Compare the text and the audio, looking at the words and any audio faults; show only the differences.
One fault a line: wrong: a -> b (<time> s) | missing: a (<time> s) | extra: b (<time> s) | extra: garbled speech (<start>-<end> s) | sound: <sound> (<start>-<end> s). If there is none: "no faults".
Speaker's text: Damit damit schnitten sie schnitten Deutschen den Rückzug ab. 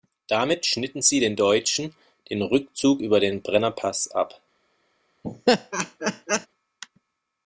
missing: damit (0.7 s)
wrong: schnitten -> den (1.2 s)
extra: über den Brennerpass (3.0 s)
sound: laugh (5.2-6.5 s)